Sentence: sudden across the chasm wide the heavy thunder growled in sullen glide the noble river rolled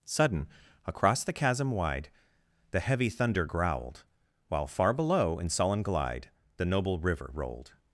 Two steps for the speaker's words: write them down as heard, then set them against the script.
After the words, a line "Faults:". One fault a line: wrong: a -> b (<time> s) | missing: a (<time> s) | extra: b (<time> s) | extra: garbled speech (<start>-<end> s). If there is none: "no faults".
sudden across the chasm wide the heavy thunder growled while far below in sullen glide the noble river rolled
Faults:
extra: while far below (4.5 s)